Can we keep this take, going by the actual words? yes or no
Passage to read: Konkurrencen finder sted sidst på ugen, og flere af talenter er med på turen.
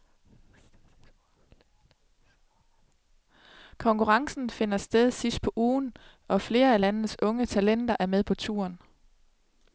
no